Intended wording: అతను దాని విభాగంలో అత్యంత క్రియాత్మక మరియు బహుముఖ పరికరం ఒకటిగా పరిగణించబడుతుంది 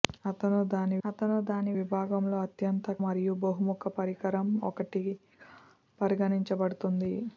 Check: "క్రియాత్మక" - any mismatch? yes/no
yes